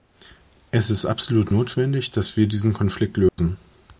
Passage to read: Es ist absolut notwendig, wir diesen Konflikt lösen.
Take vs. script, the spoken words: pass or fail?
fail